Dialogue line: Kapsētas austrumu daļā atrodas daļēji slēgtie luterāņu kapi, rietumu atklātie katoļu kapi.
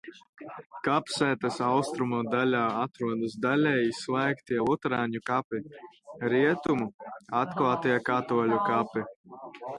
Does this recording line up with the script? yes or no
yes